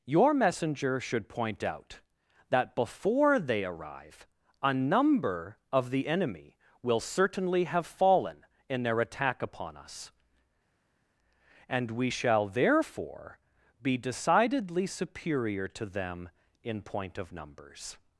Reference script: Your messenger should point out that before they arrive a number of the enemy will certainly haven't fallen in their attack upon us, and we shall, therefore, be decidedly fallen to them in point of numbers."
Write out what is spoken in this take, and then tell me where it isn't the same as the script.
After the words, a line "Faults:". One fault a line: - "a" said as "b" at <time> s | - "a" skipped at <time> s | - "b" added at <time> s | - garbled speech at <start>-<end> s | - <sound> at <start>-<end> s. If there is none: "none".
Your messenger should point out that before they arrive a number of the enemy will certainly have fallen in their attack upon us, and we shall, therefore, be decidedly superior to them in point of numbers."
Faults:
- "haven't" said as "have" at 7.7 s
- "fallen" said as "superior" at 14.9 s